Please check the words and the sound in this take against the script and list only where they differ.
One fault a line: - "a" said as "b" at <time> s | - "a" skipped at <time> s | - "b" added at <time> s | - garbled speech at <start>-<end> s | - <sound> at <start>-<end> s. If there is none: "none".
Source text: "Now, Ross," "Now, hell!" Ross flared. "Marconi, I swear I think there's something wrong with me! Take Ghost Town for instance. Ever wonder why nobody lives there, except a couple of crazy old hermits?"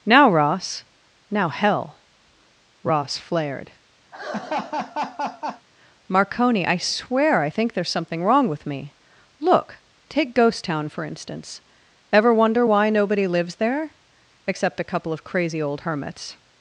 - laugh at 4.1-5.7 s
- "Look" added at 9.4 s